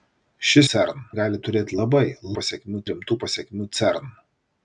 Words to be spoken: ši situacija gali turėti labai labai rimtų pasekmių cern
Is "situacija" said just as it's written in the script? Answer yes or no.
no